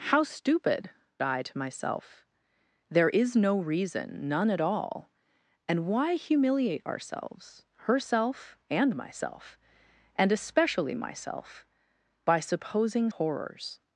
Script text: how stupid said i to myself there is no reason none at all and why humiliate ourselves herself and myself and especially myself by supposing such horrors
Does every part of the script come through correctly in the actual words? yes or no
no